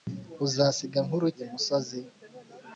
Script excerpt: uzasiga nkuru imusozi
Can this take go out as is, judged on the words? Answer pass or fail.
pass